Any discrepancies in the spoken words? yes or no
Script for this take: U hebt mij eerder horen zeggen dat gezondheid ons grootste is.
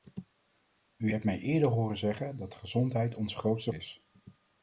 no